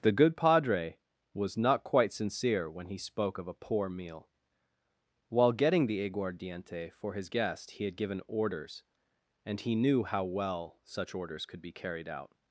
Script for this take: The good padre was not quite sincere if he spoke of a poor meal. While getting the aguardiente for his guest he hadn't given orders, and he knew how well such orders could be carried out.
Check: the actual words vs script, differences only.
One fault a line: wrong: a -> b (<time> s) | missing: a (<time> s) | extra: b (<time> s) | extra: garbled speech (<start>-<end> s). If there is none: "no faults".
wrong: if -> when (2.7 s)
wrong: hadn't -> had (7.8 s)